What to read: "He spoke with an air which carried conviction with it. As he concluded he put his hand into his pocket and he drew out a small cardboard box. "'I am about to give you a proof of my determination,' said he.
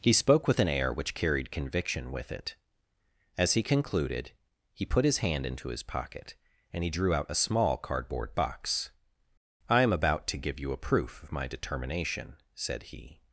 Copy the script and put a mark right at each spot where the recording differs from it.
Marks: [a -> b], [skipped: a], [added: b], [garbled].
"He spoke with an air which carried conviction with it. As he concluded he put his hand into his pocket and he drew out a small cardboard box. "'I am about to give you a proof of my determination,' said he.